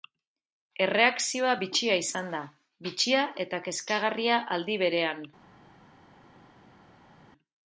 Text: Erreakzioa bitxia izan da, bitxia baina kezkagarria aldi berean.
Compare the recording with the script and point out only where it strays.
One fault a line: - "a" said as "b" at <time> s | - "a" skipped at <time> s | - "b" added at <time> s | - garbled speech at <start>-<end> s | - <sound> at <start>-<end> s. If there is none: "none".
- "baina" said as "eta" at 3.5 s